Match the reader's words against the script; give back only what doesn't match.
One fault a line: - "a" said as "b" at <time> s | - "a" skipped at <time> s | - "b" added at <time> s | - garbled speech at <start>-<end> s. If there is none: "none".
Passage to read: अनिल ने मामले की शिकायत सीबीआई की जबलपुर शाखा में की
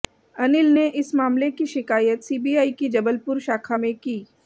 - "इस" added at 1.0 s